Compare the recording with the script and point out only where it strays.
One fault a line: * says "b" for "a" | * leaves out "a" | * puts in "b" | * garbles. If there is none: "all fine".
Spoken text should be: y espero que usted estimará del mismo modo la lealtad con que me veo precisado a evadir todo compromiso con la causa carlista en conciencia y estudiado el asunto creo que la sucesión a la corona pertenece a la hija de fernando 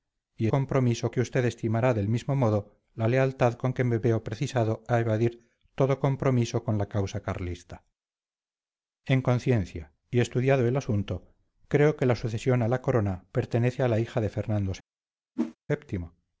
* says "compromiso" for "espero"